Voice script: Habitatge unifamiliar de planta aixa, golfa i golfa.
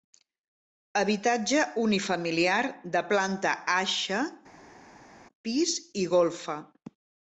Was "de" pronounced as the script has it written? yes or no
yes